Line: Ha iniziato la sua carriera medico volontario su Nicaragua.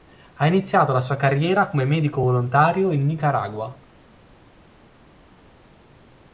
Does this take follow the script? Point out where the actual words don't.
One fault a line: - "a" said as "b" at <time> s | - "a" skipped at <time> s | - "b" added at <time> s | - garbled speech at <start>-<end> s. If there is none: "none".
- "come" added at 1.7 s
- "su" said as "in" at 2.9 s